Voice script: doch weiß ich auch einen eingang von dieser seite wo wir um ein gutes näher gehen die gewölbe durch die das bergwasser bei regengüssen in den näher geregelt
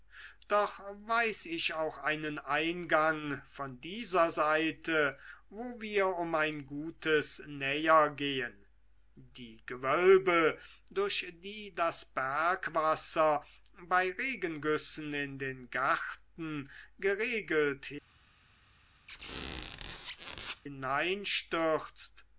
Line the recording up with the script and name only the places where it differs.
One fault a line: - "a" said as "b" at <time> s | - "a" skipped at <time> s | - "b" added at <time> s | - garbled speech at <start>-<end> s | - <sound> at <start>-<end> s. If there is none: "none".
- "näher" said as "garten" at 15.7 s
- squeak at 19.1-20.6 s